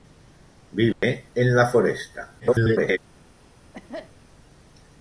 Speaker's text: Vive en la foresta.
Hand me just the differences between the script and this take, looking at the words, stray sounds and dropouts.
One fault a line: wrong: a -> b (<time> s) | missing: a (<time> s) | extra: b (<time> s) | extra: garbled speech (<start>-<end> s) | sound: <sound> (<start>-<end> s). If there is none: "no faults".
sound: dropout (0.9-1.0 s)
extra: garbled speech (2.4-3.0 s)
sound: cough (3.7-4.1 s)